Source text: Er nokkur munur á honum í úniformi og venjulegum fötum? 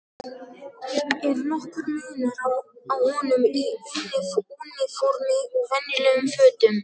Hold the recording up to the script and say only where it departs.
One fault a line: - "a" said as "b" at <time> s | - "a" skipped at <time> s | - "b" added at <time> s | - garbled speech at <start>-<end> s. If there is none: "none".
none